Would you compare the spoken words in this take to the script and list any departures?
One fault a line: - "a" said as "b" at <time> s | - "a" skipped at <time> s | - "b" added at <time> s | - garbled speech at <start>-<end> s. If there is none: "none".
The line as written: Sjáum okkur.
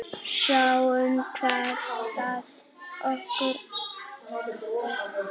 - "hvað það skilar" added at 1.3 s